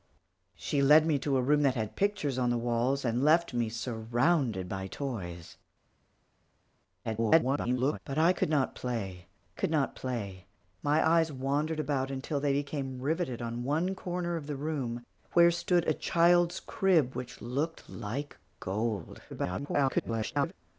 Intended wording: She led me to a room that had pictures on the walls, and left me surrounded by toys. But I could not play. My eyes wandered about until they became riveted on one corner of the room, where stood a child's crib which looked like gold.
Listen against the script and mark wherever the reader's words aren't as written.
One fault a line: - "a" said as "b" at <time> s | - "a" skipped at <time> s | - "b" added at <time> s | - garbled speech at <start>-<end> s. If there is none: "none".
- garbled speech at 7.0-8.0 s
- "could not play" added at 9.5 s
- garbled speech at 19.3-20.5 s